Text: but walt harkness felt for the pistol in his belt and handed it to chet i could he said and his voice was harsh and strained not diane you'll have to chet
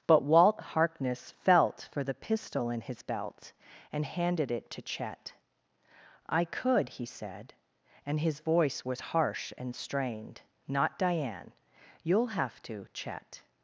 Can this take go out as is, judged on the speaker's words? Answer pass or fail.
pass